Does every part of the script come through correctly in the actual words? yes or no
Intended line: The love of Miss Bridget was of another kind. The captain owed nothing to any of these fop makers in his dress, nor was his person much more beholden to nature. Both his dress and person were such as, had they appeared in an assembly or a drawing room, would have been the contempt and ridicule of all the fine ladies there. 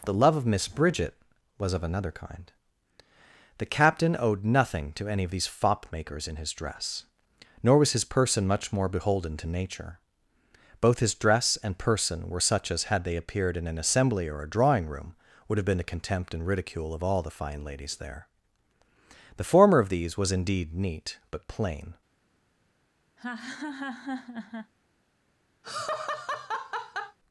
no